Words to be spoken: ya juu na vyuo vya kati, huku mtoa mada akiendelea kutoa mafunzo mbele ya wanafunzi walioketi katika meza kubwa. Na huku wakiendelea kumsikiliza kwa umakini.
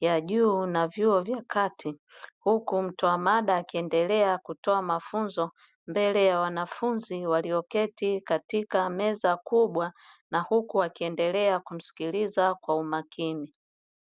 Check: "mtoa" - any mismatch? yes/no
no